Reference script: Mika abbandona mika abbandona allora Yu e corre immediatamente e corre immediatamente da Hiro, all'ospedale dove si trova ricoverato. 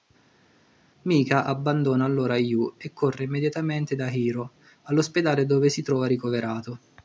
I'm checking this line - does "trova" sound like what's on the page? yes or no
yes